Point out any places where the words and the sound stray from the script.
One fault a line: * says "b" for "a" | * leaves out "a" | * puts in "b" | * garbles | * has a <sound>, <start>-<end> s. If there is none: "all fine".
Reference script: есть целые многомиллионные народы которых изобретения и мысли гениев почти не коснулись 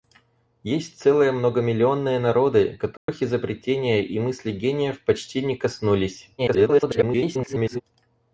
* has a dropout, 3.0-3.1 s
* garbles